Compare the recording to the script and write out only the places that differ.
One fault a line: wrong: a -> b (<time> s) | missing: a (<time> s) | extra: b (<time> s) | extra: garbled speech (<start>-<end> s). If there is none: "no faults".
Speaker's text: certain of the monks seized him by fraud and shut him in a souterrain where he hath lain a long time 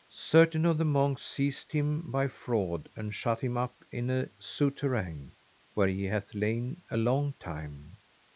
extra: up (3.5 s)